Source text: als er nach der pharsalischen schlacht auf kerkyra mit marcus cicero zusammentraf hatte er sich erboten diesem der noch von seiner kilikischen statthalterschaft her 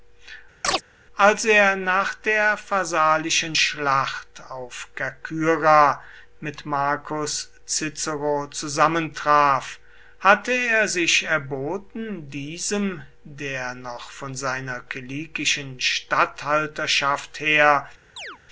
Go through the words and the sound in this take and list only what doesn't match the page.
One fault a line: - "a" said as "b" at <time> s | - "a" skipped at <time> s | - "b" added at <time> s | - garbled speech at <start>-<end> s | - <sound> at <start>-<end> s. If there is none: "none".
- chirp at 0.6-0.8 s
- chirp at 18.2-18.4 s